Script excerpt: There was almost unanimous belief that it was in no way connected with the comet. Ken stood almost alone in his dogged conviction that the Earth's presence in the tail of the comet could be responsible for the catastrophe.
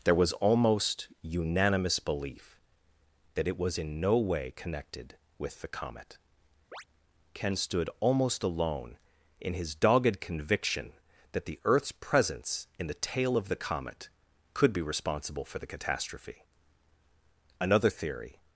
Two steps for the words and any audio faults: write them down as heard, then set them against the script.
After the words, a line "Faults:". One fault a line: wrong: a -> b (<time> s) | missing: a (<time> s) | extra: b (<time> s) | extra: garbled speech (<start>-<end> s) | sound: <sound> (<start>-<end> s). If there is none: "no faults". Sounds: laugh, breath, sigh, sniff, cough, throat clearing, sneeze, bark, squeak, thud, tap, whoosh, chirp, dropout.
There was almost unanimous belief that it was in no way connected with the comet. Ken stood almost alone in his dogged conviction that the Earth's presence in the tail of the comet could be responsible for the catastrophe. Another theory
Faults:
sound: chirp (6.7-6.8 s)
extra: Another theory (17.6 s)